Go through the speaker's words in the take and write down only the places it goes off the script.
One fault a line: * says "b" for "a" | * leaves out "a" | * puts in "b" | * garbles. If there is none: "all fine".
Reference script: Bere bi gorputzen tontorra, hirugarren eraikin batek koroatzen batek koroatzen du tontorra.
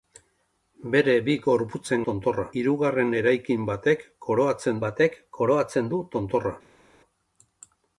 all fine